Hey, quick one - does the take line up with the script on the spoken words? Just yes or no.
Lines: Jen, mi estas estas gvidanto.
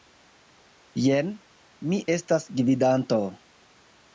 no